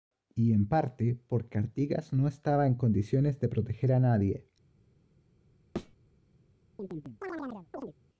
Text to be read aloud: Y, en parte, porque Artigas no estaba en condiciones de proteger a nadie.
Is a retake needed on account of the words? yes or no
no